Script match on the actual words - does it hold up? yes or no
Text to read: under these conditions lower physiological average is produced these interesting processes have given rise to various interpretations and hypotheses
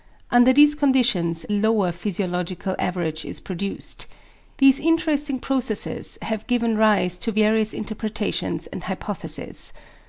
yes